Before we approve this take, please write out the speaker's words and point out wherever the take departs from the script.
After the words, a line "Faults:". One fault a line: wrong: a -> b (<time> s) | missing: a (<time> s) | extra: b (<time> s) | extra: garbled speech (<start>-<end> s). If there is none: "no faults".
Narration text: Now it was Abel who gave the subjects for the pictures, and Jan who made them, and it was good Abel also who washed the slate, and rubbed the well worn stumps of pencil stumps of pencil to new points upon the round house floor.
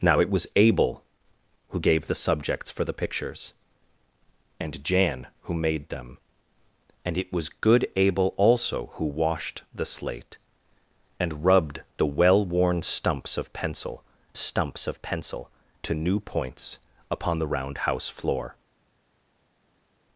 Now it was Abel who gave the subjects for the pictures, and Jan who made them, and it was good Abel also who washed the slate, and rubbed the well worn stumps of pencil stumps of pencil to new points upon the round house floor.
Faults:
no faults